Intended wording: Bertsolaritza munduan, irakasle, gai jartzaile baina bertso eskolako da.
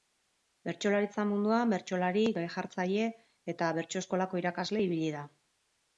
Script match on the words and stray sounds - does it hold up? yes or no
no